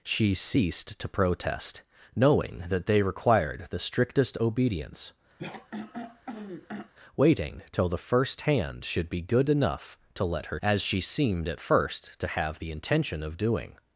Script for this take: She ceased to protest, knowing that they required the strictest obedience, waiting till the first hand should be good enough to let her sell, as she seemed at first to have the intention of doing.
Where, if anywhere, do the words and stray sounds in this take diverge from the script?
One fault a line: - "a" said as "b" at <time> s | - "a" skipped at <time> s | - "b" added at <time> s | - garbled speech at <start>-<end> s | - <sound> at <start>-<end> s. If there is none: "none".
- throat clearing at 5.4-6.9 s
- "sell" skipped at 10.6 s